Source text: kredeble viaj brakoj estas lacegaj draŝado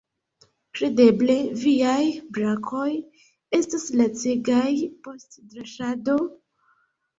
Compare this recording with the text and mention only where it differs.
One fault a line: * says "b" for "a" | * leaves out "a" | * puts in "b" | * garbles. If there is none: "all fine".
* puts in "post"